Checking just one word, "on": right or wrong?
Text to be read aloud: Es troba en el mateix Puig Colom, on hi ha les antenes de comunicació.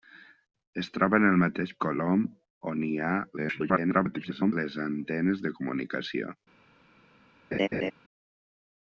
right